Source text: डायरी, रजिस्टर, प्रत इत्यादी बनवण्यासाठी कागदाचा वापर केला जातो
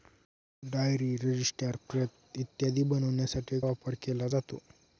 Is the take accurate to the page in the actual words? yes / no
no